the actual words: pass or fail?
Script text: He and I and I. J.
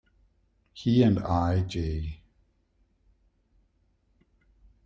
fail